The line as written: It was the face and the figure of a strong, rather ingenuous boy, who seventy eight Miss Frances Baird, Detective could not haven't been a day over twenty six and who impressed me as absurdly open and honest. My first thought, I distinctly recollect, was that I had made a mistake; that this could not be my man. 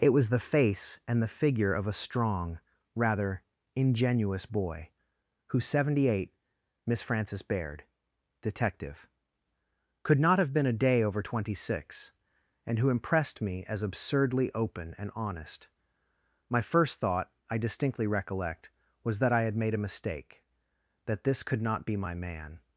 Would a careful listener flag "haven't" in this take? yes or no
yes